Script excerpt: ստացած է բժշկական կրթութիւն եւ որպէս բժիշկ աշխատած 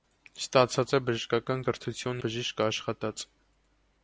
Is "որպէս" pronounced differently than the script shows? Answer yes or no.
yes